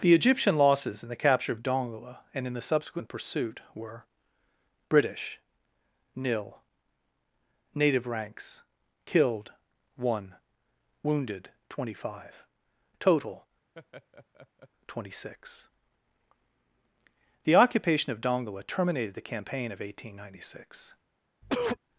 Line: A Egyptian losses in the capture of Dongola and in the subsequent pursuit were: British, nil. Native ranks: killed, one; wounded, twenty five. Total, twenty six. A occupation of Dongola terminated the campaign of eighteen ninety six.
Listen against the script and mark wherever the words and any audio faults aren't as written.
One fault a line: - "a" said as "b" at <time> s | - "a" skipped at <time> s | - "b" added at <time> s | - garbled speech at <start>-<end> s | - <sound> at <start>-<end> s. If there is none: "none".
- "A" said as "The" at 0.0 s
- laugh at 13.7-14.7 s
- "A" said as "The" at 17.4 s
- cough at 21.4-21.8 s